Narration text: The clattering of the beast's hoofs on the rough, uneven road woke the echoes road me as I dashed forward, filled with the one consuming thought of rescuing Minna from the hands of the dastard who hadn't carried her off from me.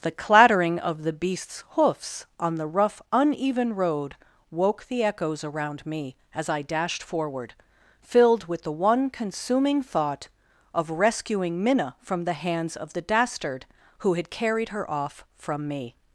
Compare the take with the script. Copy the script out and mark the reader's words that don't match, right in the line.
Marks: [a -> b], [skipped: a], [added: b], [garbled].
The clattering of the beast's hoofs on the rough, uneven road woke the echoes [road -> around] me as I dashed forward, filled with the one consuming thought of rescuing Minna from the hands of the dastard who [hadn't -> had] carried her off from me.